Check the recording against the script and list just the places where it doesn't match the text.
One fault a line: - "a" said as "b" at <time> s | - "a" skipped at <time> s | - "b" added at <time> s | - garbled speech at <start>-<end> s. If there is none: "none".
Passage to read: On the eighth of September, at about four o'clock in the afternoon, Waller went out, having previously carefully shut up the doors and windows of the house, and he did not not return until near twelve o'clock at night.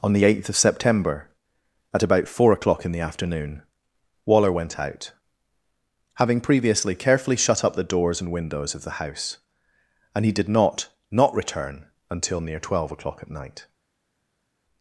none